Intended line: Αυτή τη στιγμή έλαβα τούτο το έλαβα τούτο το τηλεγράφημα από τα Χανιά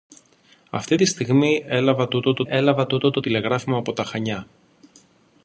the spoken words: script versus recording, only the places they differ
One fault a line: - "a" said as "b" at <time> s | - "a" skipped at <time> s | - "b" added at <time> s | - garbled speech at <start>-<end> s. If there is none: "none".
none